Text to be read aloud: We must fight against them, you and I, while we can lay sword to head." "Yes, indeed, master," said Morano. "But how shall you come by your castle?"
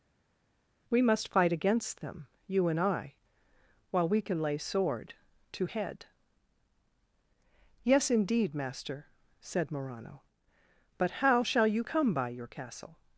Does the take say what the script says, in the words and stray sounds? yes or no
yes